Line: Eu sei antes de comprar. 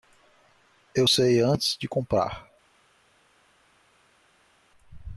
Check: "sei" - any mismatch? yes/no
no